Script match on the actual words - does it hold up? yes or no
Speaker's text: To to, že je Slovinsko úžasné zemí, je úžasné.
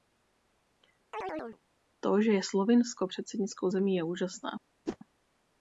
no